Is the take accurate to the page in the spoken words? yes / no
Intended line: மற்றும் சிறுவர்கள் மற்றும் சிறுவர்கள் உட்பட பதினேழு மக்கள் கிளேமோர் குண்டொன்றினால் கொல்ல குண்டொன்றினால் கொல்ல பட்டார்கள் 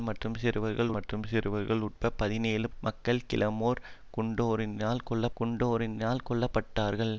yes